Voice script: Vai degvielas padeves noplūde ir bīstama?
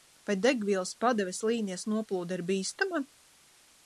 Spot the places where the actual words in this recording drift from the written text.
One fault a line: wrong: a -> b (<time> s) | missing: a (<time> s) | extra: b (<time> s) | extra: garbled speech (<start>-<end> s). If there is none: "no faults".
extra: līnijas (1.5 s)